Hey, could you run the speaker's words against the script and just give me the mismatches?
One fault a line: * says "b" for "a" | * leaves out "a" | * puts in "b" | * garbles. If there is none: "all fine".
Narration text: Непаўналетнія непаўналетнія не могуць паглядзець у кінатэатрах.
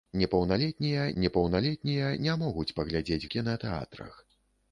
all fine